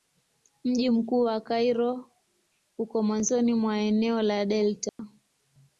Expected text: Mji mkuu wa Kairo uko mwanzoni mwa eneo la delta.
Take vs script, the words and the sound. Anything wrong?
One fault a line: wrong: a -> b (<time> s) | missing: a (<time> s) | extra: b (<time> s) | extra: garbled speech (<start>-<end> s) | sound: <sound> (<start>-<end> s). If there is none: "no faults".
sound: dropout (4.9-5.0 s)